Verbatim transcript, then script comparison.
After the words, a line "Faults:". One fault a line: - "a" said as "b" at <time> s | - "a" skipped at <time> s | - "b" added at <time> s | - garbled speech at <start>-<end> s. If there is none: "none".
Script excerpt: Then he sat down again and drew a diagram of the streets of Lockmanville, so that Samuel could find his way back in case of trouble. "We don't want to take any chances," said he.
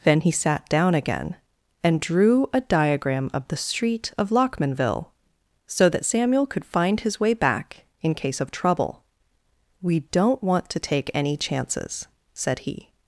Then he sat down again and drew a diagram of the street of Lockmanville, so that Samuel could find his way back in case of trouble. "We don't want to take any chances," said he.
Faults:
- "streets" said as "street" at 3.6 s